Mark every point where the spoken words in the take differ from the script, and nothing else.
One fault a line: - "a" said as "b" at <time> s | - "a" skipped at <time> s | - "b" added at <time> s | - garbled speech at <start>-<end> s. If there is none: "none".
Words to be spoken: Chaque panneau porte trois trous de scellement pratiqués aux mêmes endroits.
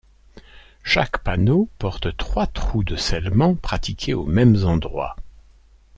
none